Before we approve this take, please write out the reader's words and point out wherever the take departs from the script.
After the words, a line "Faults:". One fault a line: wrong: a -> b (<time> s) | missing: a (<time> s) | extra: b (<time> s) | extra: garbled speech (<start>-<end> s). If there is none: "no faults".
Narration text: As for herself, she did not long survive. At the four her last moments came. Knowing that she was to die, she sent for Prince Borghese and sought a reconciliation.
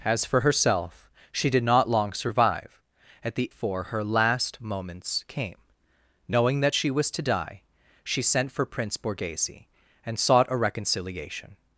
As for herself, she did not long survive. At the four her last moments came. Knowing that she was to die, she sent for Prince Borghese and sought a reconciliation.
Faults:
no faults